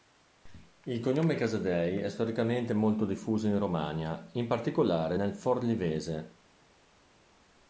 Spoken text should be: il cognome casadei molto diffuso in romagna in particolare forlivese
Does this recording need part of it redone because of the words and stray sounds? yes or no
yes